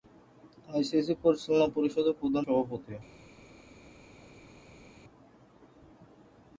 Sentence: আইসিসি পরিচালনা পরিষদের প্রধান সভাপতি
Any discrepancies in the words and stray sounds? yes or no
no